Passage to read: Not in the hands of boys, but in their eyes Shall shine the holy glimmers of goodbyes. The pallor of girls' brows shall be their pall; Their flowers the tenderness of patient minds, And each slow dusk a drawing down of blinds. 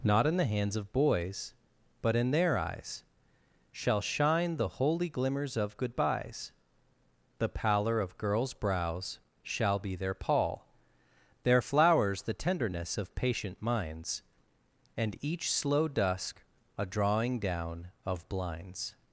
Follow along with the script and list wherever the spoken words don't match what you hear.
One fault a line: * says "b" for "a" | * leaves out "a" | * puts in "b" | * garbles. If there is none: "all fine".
all fine